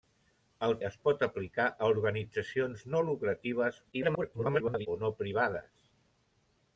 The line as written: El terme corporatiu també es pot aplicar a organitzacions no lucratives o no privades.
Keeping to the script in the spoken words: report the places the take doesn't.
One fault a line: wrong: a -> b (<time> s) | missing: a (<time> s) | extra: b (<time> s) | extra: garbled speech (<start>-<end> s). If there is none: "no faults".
missing: terme corporatiu també (0.7 s)
extra: garbled speech (3.9-4.9 s)